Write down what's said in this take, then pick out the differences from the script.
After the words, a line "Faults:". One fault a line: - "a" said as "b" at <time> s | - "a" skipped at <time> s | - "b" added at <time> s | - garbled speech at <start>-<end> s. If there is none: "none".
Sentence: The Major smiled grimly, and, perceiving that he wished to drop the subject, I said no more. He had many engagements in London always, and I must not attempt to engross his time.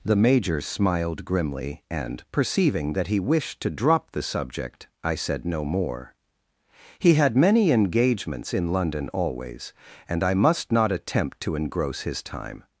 The Major smiled grimly, and, perceiving that he wished to drop the subject, I said no more. He had many engagements in London always, and I must not attempt to engross his time.
Faults:
none